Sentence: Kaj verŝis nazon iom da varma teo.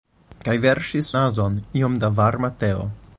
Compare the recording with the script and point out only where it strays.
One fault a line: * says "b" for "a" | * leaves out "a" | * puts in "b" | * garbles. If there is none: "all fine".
all fine